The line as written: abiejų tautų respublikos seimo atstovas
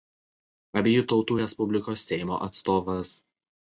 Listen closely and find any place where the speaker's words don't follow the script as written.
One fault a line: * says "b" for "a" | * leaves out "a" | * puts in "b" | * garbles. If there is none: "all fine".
all fine